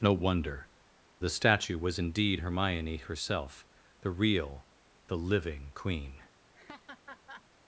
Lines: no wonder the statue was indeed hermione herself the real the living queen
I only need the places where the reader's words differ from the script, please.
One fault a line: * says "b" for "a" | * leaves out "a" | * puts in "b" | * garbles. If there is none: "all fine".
all fine